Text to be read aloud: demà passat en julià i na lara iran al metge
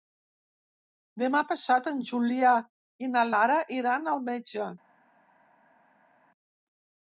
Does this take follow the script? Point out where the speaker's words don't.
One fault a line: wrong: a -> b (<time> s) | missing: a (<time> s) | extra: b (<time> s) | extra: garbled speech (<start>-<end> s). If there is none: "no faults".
no faults